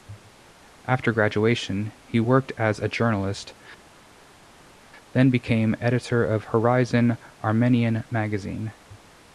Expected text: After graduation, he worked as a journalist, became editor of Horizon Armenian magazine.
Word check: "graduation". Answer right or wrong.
right